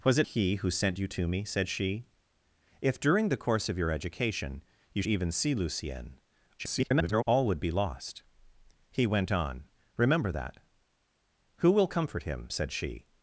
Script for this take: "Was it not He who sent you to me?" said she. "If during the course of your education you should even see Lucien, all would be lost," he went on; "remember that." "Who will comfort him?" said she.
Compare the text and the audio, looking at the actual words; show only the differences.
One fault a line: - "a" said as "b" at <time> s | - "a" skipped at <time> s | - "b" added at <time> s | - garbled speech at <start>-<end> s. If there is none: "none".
- "not" skipped at 0.3 s
- "should" skipped at 5.0 s
- garbled speech at 6.6-7.2 s